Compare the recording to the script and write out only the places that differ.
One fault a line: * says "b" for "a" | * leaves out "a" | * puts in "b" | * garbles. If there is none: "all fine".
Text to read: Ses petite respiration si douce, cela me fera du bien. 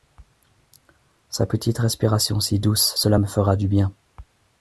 * says "Sa" for "Ses"